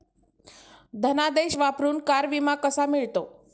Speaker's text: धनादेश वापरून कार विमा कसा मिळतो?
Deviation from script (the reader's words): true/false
false